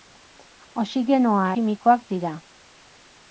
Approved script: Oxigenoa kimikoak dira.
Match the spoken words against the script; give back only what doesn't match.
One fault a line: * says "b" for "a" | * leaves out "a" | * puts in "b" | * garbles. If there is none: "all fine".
all fine